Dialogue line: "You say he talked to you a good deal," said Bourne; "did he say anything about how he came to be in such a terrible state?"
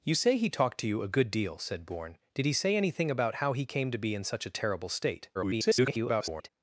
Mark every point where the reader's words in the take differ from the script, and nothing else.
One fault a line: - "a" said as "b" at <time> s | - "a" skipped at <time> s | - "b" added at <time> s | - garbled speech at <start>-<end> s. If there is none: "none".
- garbled speech at 5.3-6.5 s